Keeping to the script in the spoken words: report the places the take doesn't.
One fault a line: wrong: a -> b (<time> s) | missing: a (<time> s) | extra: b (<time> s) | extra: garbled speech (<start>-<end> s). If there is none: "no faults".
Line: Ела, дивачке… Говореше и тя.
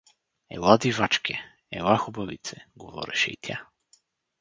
extra: Ела хубавице (1.7 s)